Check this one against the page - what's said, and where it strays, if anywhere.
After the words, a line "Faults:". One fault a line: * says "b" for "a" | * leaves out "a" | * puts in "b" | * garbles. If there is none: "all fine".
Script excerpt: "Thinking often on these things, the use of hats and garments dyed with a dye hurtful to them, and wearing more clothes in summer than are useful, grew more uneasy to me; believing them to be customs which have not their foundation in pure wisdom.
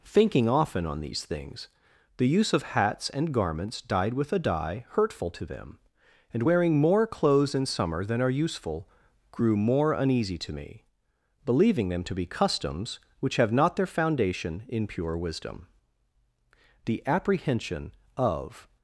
"Thinking often on these things, the use of hats and garments dyed with a dye hurtful to them, and wearing more clothes in summer than are useful, grew more uneasy to me; believing them to be customs which have not their foundation in pure wisdom. The apprehension of
Faults:
* puts in "The apprehension of"